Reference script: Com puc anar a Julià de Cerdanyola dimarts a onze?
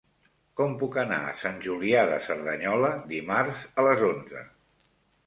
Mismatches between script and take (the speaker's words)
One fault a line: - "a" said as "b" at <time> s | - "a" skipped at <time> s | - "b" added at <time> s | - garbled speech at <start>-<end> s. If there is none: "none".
- "Sant" added at 1.4 s
- "les" added at 3.9 s